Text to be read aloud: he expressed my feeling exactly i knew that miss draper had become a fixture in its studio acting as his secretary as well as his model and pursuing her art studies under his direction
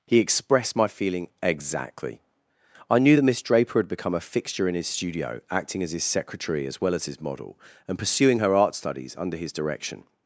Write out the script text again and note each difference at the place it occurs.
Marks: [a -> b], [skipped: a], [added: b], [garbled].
he expressed my feeling exactly i knew that miss draper had become a fixture in [its -> his] studio acting as his secretary as well as his model and pursuing her art studies under his direction